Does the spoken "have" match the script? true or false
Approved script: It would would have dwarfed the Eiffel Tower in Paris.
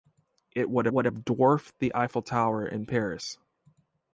true